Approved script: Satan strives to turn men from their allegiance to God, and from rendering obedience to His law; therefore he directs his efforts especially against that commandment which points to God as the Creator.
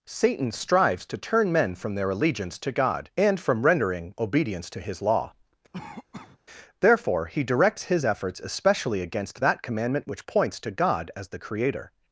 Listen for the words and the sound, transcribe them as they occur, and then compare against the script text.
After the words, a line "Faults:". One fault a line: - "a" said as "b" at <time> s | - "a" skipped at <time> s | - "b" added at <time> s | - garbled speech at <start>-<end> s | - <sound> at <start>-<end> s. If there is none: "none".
Satan strives to turn men from their allegiance to God, and from rendering obedience to His law; therefore he directs his efforts especially against that commandment which points to God as the Creator.
Faults:
- cough at 5.7-6.4 s